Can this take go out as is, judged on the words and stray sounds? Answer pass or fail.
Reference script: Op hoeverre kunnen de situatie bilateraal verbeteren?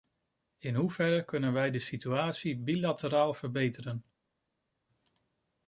fail